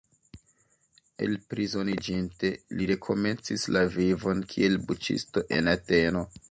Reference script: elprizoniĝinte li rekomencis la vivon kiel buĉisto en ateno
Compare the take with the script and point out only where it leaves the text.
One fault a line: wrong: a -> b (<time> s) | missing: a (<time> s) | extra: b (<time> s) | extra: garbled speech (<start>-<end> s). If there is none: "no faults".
no faults